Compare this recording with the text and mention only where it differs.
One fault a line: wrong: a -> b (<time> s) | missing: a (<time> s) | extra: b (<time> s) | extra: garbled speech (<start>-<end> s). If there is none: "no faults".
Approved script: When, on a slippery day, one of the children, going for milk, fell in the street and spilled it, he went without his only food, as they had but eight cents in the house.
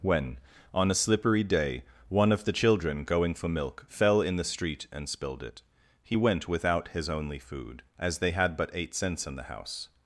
no faults